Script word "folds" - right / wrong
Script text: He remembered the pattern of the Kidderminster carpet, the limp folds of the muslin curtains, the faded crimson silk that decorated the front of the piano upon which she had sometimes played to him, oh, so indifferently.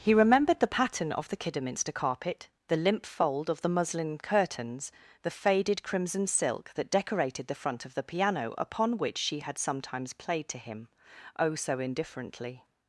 wrong